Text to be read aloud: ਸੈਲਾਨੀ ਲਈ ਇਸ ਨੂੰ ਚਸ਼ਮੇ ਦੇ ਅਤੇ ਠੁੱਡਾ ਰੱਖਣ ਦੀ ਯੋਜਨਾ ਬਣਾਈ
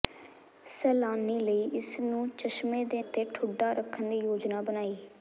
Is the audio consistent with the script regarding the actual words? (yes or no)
yes